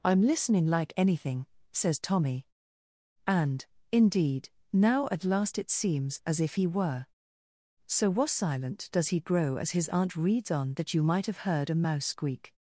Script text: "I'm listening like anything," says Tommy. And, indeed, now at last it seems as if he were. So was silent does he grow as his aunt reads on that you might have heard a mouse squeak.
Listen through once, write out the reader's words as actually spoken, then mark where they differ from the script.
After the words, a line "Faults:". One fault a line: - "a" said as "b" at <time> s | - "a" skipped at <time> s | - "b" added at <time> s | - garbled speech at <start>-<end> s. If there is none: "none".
"I'm listening like anything," says Tommy. And, indeed, now at last it seems as if he were. So was silent does he grow as his aunt reads on that you might have heard a mouse squeak.
Faults:
none